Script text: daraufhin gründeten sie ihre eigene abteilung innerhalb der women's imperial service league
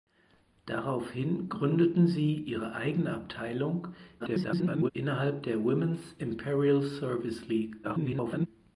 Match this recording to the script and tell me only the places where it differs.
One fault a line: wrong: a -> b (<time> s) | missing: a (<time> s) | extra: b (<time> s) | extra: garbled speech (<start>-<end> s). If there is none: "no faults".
extra: garbled speech (4.2-4.9 s)
extra: garbled speech (7.8-8.5 s)